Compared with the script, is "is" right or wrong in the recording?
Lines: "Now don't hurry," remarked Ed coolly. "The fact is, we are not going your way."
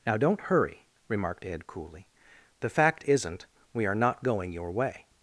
wrong